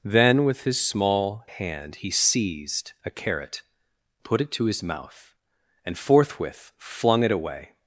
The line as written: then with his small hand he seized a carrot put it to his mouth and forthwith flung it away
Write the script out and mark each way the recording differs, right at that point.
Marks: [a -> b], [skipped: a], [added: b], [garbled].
then with his small hand he seized a carrot put it to his mouth and forthwith flung it away